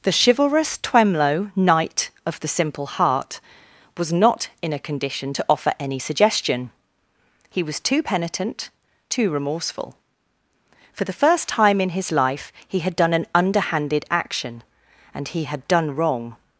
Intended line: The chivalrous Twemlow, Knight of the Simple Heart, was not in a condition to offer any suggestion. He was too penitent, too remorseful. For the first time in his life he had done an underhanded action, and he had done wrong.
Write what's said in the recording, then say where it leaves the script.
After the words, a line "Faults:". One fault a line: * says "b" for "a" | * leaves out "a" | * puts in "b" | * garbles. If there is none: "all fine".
The chivalrous Twemlow, Knight of the Simple Heart, was not in a condition to offer any suggestion. He was too penitent, too remorseful. For the first time in his life he had done an underhanded action, and he had done wrong.
Faults:
all fine